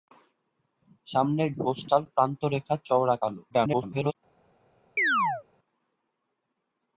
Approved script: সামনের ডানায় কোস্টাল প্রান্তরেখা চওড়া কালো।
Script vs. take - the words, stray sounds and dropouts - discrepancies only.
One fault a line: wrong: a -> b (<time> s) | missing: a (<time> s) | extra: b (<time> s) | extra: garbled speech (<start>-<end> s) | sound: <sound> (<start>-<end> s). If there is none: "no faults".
missing: ডানায় (1.5 s)
extra: garbled speech (3.5-4.2 s)
sound: chirp (5.0-5.4 s)